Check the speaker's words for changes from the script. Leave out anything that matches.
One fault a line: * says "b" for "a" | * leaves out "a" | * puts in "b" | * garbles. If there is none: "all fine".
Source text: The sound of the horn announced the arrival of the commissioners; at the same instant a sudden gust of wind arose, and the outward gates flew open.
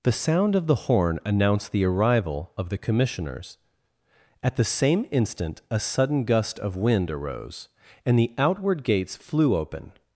all fine